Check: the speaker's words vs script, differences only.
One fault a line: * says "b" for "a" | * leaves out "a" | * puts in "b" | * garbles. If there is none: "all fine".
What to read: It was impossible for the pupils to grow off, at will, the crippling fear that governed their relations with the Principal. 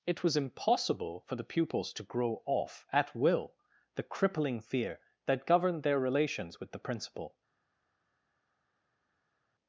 all fine